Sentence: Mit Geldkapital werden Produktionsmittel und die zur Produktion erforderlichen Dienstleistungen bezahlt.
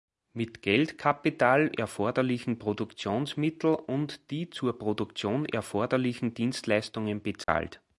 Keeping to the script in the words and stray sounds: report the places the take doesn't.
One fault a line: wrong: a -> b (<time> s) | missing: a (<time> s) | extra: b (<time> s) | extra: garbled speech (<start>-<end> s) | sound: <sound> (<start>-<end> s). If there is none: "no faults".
wrong: werden -> erforderlichen (1.7 s)
sound: dropout (7.4-7.5 s)